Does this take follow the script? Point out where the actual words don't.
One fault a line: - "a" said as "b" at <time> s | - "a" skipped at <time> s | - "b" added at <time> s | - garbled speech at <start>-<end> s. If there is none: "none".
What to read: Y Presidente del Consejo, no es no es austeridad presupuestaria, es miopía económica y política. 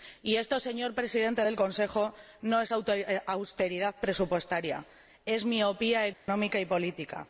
- "esto señor" added at 0.4 s
- "no es" skipped at 2.7 s